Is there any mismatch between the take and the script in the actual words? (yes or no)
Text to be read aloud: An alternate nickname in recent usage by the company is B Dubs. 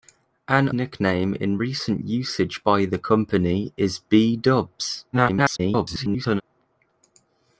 yes